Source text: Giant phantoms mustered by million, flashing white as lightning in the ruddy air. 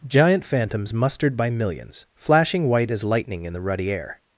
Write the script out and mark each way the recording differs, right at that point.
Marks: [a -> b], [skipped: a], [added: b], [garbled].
Giant phantoms mustered by [million, -> millions] flashing white as lightning in the ruddy air.